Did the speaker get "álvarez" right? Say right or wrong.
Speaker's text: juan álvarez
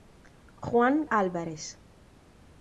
right